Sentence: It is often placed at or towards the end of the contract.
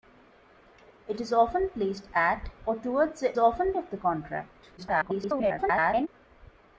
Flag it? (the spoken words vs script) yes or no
yes